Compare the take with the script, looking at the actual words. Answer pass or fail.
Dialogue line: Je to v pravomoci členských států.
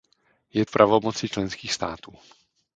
fail